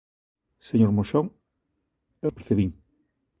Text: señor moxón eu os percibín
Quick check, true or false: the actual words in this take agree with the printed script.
true